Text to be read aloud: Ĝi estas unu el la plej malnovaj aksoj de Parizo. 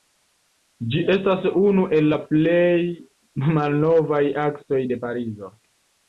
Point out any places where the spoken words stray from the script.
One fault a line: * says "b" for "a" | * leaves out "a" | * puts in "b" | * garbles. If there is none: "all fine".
all fine